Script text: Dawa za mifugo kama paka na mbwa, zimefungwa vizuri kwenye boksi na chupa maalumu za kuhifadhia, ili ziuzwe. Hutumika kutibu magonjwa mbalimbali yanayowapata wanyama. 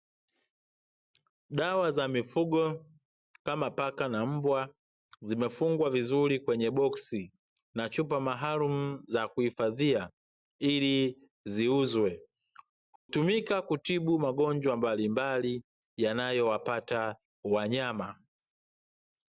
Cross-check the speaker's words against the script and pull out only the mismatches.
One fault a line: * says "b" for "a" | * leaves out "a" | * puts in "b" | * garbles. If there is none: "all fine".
all fine